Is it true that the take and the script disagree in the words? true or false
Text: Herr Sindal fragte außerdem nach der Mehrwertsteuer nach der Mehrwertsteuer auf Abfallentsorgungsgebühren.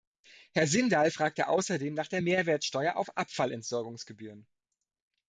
true